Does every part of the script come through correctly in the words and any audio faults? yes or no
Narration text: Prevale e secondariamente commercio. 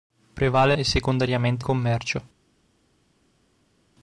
yes